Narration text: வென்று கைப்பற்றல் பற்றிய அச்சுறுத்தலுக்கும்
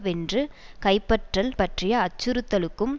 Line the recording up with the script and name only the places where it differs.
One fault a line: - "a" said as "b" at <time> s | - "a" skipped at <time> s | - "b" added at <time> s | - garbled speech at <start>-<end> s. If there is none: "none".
none